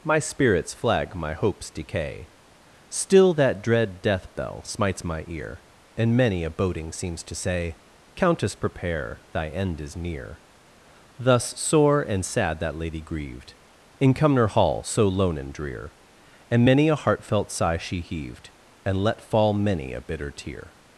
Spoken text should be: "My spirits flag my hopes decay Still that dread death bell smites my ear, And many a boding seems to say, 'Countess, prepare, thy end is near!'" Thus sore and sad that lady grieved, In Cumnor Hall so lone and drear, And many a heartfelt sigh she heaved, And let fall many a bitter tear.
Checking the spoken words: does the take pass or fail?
pass